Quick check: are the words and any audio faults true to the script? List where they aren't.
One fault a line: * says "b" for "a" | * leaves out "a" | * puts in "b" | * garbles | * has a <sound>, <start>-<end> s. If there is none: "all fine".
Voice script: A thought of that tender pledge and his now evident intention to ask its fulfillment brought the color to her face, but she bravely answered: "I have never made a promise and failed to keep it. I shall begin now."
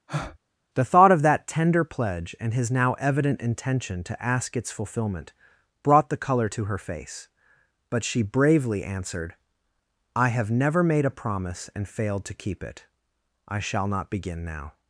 * has a breath, 0.1-0.4 s
* says "The" for "A"
* puts in "not"